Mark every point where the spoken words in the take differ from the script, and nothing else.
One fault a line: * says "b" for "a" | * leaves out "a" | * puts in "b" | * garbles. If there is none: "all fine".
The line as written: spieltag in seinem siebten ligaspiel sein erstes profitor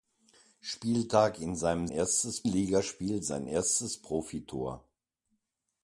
* says "erstes" for "siebten"